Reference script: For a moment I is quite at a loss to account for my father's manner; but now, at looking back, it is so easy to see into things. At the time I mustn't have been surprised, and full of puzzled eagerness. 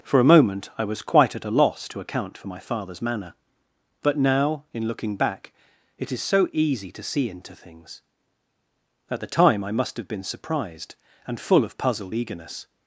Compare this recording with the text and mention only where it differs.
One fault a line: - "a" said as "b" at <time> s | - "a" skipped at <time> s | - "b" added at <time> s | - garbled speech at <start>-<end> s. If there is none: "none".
- "is" said as "was" at 0.8 s
- "at" said as "in" at 4.7 s
- "mustn't" said as "must" at 9.7 s